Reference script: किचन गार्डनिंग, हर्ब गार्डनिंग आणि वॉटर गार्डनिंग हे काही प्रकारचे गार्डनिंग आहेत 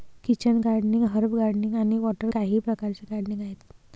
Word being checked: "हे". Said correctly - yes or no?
no